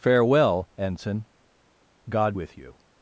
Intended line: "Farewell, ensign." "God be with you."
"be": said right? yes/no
no